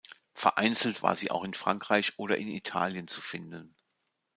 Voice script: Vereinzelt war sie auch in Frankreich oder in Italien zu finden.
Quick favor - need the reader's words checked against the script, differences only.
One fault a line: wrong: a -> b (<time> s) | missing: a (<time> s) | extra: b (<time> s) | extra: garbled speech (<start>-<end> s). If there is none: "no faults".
no faults